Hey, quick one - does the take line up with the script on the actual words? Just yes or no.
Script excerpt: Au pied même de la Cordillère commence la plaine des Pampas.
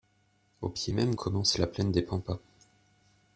no